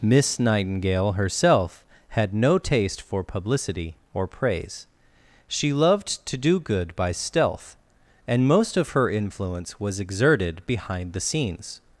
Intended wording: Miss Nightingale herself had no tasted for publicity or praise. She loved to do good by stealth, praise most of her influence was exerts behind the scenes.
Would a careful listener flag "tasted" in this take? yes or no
yes